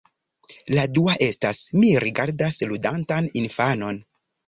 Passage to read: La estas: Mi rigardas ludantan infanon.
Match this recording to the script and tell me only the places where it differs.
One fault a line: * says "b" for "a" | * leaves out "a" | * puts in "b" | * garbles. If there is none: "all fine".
* puts in "dua"